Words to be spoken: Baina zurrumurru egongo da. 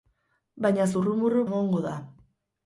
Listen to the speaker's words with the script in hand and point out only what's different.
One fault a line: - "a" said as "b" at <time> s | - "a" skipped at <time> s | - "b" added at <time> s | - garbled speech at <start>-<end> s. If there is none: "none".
none